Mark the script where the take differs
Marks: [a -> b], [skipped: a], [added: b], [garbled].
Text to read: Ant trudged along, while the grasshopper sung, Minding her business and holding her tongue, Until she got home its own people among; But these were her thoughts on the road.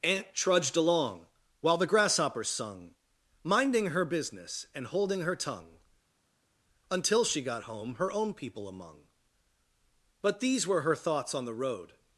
Ant trudged along, while the grasshopper sung, Minding her business and holding her tongue, Until she got home [its -> her] own people among; But these were her thoughts on the road.